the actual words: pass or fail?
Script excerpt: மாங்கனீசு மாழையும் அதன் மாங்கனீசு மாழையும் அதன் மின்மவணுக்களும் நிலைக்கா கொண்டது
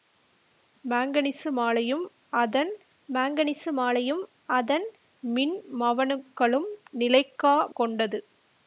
pass